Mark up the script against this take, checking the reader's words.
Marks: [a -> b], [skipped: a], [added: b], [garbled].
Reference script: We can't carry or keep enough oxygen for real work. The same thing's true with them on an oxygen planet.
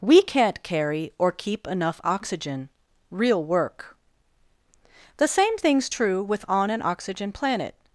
We can't carry or keep enough oxygen [skipped: for] real work. The same thing's true with [skipped: them] on an oxygen planet.